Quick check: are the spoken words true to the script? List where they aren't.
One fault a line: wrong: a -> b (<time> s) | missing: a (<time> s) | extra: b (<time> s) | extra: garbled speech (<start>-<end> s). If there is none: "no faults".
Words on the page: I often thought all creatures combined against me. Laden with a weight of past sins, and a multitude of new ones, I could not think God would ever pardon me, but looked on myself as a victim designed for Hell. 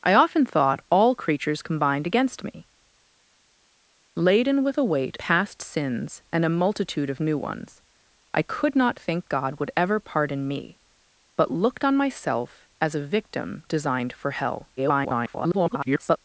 missing: of (5.2 s)
extra: garbled speech (14.8-16.2 s)